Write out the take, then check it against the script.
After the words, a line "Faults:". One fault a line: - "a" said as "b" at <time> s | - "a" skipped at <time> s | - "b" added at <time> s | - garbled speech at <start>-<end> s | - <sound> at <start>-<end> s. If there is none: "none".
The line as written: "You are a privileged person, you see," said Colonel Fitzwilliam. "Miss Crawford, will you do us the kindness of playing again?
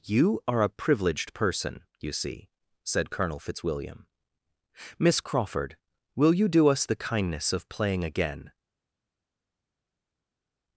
"You are a privileged person, you see," said Colonel Fitzwilliam. "Miss Crawford, will you do us the kindness of playing again?
Faults:
none